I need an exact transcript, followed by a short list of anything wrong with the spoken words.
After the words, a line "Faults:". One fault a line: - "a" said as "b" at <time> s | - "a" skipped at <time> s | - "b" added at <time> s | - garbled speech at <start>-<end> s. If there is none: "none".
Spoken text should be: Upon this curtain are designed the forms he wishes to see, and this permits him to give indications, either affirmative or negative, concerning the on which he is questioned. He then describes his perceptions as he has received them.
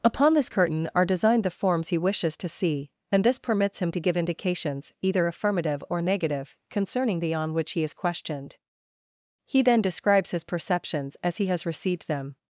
Upon this curtain are designed the forms he wishes to see, and this permits him to give indications, either affirmative or negative, concerning the on which he is questioned. He then describes his perceptions as he has received them.
Faults:
none